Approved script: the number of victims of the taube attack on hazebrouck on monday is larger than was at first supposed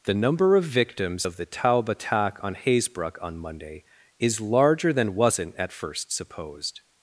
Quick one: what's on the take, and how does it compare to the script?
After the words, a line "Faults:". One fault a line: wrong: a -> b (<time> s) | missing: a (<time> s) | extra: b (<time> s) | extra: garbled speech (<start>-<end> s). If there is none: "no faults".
the number of victims of the taube attack on hazebrouck on monday is larger than wasn't at first supposed
Faults:
wrong: was -> wasn't (5.1 s)